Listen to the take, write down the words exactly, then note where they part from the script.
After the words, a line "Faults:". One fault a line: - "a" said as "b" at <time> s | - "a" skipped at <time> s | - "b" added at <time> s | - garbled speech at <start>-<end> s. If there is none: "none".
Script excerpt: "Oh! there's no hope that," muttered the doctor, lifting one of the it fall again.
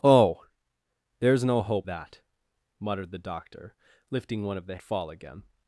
"Oh! there's no hope that," muttered the doctor, lifting one of the it fall again.
Faults:
none